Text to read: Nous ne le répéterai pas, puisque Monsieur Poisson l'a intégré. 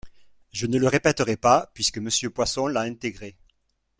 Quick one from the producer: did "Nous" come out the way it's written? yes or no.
no